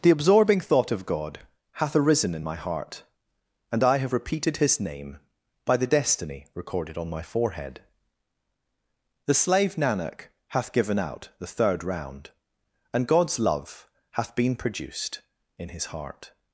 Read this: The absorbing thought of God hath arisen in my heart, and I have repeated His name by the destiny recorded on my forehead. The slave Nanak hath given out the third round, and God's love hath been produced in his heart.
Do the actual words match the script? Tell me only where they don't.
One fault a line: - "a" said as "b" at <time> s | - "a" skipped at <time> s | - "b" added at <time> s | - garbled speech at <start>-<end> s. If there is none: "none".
none